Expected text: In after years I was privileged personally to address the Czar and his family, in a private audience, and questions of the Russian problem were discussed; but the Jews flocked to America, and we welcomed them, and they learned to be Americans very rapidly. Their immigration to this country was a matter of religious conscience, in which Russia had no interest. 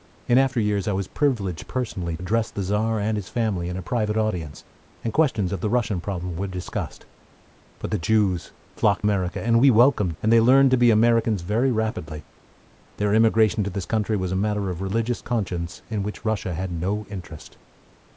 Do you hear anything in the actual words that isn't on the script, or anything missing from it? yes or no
yes